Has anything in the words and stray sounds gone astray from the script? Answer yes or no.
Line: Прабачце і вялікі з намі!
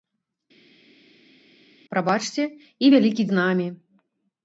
no